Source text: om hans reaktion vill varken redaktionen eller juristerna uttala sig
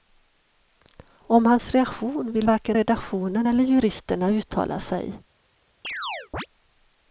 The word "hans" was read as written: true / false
true